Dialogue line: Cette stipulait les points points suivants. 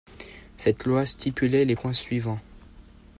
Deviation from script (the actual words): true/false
true